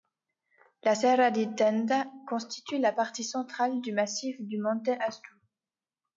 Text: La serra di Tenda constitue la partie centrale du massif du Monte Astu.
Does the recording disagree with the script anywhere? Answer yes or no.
no